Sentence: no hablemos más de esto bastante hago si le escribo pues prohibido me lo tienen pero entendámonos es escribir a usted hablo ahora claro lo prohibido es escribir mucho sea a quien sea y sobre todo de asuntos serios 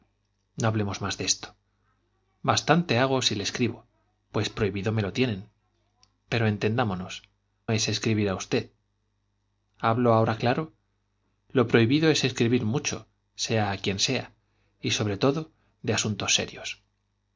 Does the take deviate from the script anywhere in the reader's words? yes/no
no